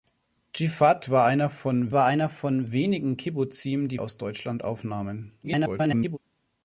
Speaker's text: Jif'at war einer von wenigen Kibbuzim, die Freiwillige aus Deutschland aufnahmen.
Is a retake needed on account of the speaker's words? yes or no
yes